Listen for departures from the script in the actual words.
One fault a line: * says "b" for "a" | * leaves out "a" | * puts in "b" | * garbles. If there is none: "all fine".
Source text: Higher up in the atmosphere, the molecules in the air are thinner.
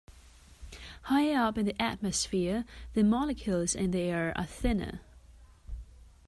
all fine